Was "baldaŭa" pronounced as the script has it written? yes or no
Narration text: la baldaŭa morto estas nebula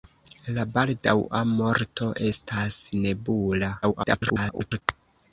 yes